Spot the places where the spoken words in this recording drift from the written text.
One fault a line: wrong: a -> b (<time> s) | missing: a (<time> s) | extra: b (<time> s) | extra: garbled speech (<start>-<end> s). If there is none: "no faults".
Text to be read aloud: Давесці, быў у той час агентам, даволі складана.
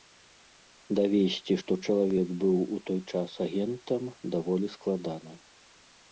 extra: што чалавек (1.6 s)